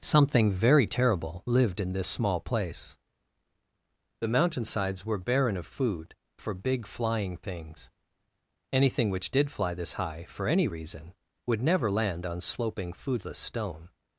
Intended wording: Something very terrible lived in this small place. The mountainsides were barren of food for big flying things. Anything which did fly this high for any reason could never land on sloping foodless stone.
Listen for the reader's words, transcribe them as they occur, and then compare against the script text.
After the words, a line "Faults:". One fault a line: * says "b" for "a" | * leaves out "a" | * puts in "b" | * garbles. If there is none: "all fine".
Something very terrible lived in this small place. The mountainsides were barren of food for big flying things. Anything which did fly this high for any reason would never land on sloping foodless stone.
Faults:
* says "would" for "could"